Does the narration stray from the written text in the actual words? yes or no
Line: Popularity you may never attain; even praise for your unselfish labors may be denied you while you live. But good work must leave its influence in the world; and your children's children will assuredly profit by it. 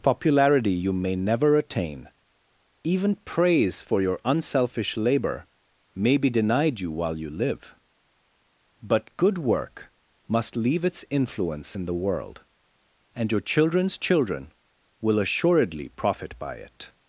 yes